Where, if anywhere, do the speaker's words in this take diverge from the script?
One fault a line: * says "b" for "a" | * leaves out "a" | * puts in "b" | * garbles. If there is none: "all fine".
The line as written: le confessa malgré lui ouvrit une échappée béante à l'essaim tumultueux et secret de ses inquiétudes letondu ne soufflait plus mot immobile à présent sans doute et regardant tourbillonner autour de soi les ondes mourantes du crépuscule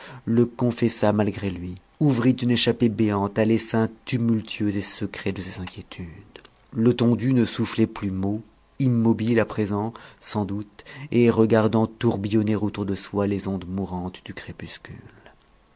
all fine